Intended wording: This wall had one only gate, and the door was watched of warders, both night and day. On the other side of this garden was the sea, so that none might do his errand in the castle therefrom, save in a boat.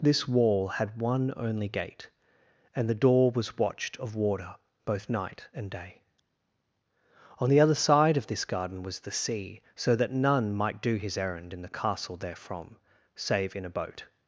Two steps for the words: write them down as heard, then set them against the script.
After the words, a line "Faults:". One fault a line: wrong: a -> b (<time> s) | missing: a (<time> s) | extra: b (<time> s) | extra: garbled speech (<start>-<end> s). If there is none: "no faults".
This wall had one only gate, and the door was watched of warder, both night and day. On the other side of this garden was the sea, so that none might do his errand in the castle therefrom, save in a boat.
Faults:
wrong: warders -> warder (4.2 s)